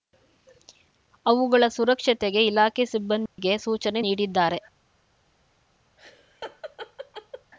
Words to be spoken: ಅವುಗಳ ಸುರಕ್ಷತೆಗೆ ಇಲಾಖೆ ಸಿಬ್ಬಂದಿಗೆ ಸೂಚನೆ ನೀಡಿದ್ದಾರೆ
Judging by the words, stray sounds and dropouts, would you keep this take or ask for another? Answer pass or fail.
fail